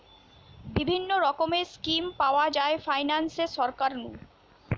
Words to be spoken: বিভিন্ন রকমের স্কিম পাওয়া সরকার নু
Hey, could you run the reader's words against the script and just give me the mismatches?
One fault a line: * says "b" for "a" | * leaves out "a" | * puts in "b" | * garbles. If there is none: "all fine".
* puts in "যায় ফাইনান্সে"